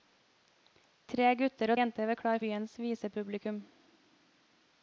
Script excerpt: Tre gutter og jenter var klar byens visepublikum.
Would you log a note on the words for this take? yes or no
no